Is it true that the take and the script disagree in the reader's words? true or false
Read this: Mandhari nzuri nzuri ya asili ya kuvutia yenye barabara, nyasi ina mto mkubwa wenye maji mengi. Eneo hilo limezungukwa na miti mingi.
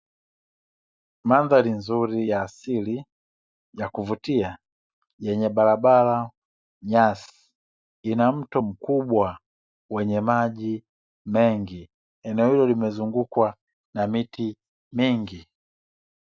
true